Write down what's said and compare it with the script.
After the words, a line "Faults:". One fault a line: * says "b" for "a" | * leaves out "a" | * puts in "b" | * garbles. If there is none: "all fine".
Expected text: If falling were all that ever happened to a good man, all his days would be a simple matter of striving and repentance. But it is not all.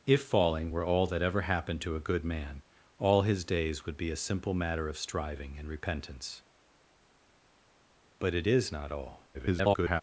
If falling were all that ever happened to a good man, all his days would be a simple matter of striving and repentance. But it is not all. [garbled]
Faults:
* garbles